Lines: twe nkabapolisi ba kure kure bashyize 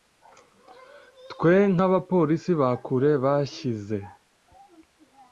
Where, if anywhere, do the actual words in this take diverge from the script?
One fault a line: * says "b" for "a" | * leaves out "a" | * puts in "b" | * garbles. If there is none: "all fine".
* leaves out "kure"